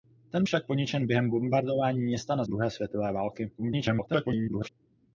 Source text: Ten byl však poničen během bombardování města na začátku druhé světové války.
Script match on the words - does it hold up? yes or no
no